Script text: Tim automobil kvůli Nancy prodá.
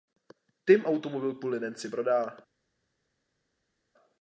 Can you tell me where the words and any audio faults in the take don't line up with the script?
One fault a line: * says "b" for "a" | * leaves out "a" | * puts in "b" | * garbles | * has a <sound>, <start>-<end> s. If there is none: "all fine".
all fine